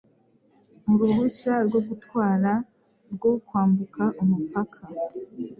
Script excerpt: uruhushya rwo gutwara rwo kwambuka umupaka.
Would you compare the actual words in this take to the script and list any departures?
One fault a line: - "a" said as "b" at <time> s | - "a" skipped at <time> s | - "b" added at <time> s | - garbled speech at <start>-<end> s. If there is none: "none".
none